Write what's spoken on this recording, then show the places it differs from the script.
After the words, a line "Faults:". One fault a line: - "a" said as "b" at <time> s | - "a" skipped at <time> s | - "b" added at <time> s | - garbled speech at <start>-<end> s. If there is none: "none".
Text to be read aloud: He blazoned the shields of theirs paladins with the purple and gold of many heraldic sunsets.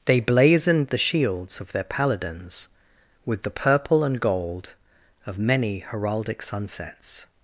They blazoned the shields of their paladins with the purple and gold of many heraldic sunsets.
Faults:
- "He" said as "They" at 0.1 s
- "theirs" said as "their" at 1.7 s